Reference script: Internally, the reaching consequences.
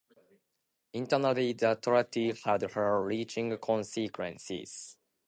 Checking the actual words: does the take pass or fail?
fail